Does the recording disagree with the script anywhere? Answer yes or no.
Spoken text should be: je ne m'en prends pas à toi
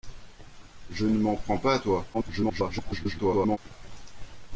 yes